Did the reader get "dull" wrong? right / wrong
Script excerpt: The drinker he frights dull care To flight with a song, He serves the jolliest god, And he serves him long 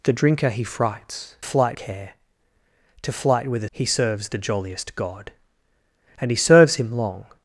wrong